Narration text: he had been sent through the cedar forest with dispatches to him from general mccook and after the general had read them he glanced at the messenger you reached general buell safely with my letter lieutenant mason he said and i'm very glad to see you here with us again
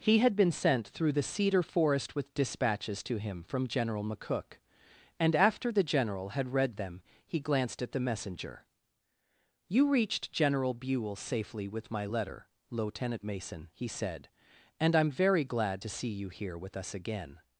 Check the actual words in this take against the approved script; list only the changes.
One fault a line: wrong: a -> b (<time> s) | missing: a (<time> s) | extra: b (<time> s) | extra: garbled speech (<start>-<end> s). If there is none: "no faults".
no faults